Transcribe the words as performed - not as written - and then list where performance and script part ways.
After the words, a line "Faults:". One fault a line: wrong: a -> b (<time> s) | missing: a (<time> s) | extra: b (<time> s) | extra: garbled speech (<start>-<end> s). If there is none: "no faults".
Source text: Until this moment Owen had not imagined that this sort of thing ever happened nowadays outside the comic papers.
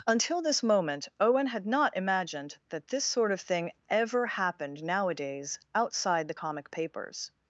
Until this moment Owen had not imagined that this sort of thing ever happened nowadays outside the comic papers.
Faults:
no faults